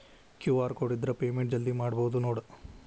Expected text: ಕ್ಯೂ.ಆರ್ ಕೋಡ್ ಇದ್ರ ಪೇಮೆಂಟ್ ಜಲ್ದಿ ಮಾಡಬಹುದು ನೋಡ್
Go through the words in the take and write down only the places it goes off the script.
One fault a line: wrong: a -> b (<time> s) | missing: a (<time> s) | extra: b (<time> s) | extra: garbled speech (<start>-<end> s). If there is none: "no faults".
no faults